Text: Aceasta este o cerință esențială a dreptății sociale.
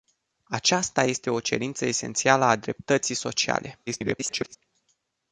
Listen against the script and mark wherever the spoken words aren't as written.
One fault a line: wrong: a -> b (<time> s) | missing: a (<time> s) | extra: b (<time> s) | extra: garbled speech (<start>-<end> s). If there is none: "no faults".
extra: garbled speech (3.9-4.6 s)